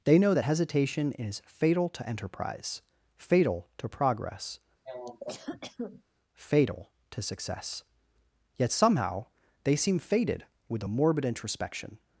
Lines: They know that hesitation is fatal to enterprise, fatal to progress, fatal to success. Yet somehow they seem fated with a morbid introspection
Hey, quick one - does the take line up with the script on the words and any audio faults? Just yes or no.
no